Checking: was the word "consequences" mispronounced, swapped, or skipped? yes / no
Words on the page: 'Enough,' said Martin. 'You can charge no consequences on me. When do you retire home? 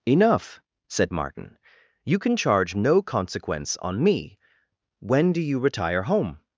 yes